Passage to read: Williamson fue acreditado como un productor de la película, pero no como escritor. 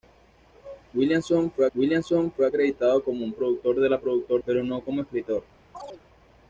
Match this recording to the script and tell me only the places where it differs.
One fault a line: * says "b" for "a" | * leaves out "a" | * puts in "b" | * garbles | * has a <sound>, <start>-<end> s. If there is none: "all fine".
* puts in "williamson fue"
* says "productor" for "película"
* has a chirp, 5.7-6.0 s